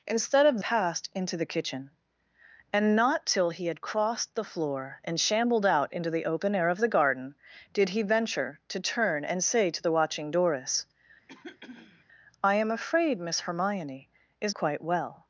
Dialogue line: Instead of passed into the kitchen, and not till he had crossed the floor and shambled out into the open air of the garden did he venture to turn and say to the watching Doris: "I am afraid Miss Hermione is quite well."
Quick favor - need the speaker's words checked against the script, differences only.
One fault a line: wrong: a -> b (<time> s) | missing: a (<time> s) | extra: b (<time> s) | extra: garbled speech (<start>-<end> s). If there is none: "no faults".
no faults